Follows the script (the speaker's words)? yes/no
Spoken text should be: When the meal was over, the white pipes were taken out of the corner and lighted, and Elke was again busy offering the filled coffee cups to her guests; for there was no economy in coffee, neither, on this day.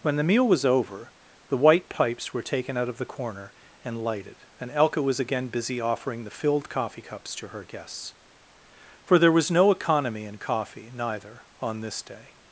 yes